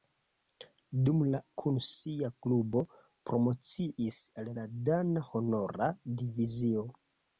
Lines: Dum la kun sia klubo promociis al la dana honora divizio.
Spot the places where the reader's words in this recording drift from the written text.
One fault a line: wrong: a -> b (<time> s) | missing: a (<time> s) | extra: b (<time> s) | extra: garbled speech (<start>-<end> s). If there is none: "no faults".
no faults